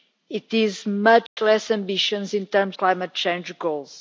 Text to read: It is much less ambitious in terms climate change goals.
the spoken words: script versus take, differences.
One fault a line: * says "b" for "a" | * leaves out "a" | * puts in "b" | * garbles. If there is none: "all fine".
all fine